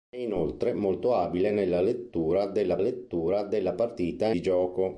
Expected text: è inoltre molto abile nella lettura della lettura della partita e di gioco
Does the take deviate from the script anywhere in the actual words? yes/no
no